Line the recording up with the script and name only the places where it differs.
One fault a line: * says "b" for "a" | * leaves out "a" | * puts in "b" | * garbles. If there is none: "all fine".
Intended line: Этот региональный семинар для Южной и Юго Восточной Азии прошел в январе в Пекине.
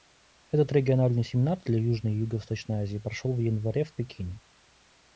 all fine